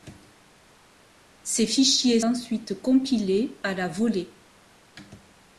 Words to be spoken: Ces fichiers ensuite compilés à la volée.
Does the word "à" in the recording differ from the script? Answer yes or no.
no